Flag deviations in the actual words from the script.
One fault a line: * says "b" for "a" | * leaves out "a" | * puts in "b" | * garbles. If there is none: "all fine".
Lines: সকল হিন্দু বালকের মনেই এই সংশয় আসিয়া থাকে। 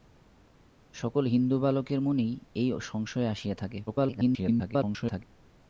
* garbles